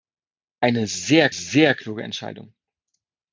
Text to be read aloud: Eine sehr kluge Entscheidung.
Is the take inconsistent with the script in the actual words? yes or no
yes